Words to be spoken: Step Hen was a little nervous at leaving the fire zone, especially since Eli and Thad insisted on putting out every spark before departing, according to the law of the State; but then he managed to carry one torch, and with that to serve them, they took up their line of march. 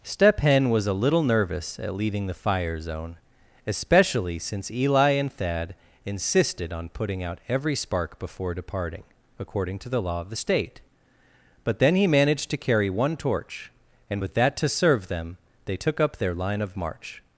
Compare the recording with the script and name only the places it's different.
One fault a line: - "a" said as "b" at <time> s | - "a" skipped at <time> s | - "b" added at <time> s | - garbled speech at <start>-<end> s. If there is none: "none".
none